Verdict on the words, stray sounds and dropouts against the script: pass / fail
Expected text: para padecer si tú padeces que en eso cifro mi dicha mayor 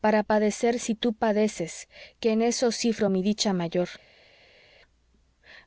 pass